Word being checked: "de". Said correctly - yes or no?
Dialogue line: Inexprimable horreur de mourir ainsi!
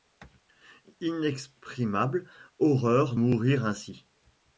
no